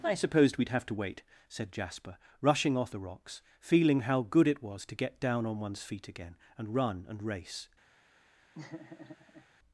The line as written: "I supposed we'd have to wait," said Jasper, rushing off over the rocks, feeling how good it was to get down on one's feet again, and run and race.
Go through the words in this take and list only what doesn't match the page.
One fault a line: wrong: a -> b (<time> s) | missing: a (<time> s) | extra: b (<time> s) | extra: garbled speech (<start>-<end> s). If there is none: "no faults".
missing: over (3.0 s)